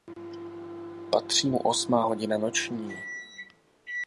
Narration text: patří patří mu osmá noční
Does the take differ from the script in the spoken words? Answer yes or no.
yes